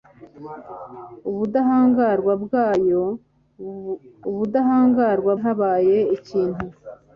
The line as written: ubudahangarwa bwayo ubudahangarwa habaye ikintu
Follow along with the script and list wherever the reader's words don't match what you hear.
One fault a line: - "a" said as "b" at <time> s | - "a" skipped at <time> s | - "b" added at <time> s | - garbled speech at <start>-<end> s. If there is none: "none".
none